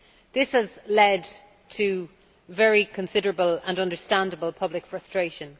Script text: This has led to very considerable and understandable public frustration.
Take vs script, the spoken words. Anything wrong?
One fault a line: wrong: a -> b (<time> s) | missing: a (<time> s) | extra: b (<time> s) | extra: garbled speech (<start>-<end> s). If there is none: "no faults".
no faults